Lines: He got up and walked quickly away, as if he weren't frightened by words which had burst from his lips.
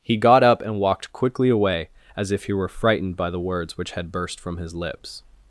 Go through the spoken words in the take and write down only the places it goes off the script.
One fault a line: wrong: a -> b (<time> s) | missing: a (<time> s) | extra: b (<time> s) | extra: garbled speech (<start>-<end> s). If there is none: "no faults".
wrong: weren't -> were (2.5 s)
extra: the (3.3 s)